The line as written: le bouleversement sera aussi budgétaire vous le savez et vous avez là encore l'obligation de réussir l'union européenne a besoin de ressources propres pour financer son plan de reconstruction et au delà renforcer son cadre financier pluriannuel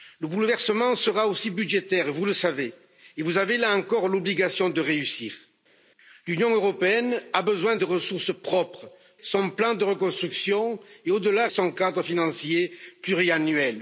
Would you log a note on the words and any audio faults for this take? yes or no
yes